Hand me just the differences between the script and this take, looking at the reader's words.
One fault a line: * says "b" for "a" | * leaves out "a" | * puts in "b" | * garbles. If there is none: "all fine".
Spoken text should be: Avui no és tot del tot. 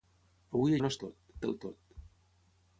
all fine